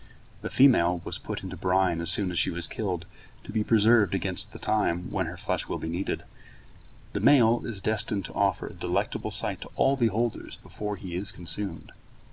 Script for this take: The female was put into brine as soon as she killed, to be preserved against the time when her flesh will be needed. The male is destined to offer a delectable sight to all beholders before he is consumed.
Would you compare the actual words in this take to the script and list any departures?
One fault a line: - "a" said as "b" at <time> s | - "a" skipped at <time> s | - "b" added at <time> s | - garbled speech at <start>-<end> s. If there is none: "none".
- "was" added at 2.5 s